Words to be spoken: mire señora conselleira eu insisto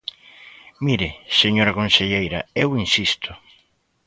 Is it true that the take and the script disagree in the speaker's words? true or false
false